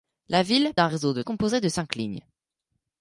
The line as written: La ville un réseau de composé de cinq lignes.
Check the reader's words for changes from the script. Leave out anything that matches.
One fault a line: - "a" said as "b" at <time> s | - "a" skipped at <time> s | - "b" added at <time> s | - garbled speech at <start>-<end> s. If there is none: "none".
none